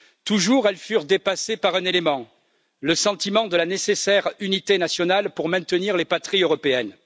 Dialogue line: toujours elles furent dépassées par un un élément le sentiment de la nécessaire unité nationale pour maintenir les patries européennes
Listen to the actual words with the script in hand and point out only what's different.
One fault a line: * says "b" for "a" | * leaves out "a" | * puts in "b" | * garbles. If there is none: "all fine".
* leaves out "un"